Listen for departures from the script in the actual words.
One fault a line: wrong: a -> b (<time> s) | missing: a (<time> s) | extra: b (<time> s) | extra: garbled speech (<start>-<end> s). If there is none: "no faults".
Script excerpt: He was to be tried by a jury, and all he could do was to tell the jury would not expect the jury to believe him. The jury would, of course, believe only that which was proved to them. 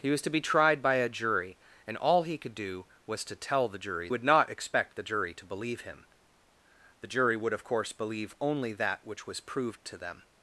no faults